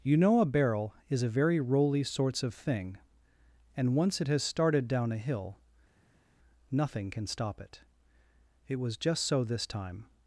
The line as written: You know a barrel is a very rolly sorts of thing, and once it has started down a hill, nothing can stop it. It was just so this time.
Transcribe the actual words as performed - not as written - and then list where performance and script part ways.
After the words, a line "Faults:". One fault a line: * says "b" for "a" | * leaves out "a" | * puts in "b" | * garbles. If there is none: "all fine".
You know a barrel is a very rolly sorts of thing, and once it has started down a hill, nothing can stop it. It was just so this time.
Faults:
all fine